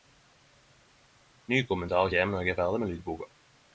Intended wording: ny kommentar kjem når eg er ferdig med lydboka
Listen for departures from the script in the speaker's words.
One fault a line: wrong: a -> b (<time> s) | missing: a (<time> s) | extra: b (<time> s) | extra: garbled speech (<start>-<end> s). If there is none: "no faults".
no faults